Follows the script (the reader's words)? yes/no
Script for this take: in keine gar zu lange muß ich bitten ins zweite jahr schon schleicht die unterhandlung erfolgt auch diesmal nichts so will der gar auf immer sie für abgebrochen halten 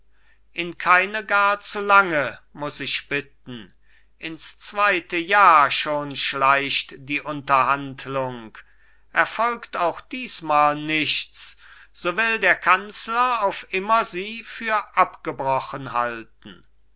no